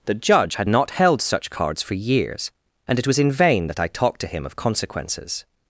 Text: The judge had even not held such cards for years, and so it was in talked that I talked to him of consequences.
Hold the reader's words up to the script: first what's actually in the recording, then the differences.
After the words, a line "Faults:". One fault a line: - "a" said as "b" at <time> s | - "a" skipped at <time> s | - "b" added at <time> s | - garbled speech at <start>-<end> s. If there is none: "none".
The judge had not held such cards for years, and it was in vain that I talked to him of consequences.
Faults:
- "even" skipped at 0.7 s
- "so" skipped at 3.0 s
- "talked" said as "vain" at 3.3 s